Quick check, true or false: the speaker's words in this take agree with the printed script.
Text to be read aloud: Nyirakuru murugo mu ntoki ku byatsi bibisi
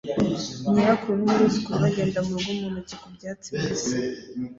false